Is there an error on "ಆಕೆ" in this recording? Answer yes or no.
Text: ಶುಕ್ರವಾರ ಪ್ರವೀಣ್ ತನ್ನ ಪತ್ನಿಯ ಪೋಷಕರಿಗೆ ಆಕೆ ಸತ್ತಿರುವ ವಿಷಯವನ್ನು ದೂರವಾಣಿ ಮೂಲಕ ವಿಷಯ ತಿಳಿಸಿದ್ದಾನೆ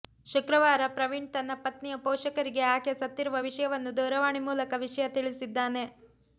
no